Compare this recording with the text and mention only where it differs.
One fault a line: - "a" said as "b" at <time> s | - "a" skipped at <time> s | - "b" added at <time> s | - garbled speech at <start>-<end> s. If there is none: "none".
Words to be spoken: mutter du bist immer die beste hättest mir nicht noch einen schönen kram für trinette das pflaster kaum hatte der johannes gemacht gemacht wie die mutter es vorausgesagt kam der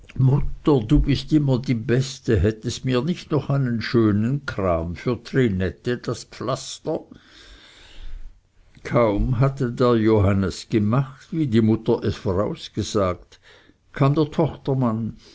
- "gemacht" skipped at 11.3 s